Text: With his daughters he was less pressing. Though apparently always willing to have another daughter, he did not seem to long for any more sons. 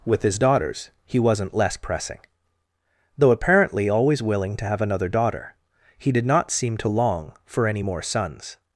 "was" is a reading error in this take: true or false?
true